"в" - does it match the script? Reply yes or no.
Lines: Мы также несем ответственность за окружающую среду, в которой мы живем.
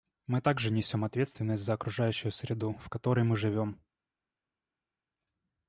yes